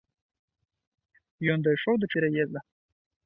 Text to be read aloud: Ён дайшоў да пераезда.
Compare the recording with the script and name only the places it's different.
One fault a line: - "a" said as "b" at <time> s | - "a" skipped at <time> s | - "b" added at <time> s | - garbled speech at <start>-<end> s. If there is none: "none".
none